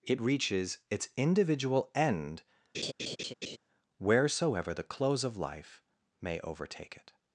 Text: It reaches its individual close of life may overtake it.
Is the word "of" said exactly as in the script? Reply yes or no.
yes